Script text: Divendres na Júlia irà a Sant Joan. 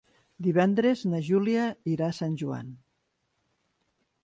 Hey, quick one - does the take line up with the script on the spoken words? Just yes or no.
yes